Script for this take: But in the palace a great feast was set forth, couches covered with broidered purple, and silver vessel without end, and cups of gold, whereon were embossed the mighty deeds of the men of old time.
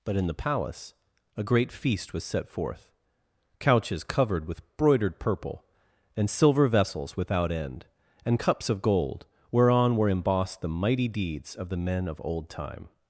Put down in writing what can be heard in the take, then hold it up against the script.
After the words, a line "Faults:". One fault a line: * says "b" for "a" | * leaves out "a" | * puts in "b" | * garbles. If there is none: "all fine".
But in the palace a great feast was set forth, couches covered with broidered purple, and silver vessels without end, and cups of gold, whereon were embossed the mighty deeds of the men of old time.
Faults:
* says "vessels" for "vessel"